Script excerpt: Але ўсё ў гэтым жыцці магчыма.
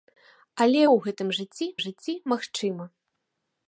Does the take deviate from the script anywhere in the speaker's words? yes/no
yes